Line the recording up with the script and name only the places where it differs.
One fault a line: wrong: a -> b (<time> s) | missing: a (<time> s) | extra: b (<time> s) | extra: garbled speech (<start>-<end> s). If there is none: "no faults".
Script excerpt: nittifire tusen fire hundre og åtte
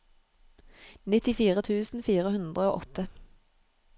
no faults